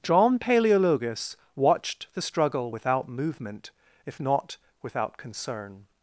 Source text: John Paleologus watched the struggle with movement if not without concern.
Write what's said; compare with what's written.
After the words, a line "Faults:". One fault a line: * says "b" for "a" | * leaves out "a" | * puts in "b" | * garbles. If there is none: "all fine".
John Paleologus watched the struggle without movement if not without concern.
Faults:
* says "without" for "with"